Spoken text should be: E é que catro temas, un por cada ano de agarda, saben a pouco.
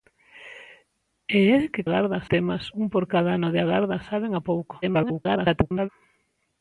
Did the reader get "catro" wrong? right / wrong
wrong